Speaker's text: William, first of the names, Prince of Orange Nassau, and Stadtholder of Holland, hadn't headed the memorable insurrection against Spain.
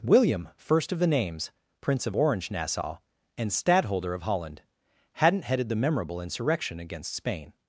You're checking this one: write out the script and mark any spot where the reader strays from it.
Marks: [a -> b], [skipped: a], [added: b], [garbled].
William, first of the names, Prince of Orange Nassau, and Stadtholder of Holland, hadn't headed the memorable insurrection against Spain.